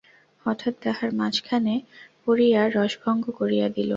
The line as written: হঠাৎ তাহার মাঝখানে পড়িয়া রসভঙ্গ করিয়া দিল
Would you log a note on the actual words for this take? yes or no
no